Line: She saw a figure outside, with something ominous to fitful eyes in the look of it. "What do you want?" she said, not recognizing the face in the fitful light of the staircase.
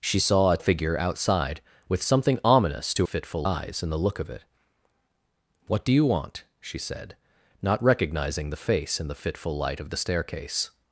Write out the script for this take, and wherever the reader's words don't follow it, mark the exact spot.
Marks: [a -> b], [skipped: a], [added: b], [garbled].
She saw a figure outside, with something ominous to fitful eyes in the look of it. "What do you want?" she said, not recognizing the face in the fitful light of the staircase.